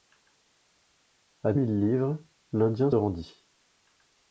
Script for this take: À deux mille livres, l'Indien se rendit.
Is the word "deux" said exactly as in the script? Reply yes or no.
no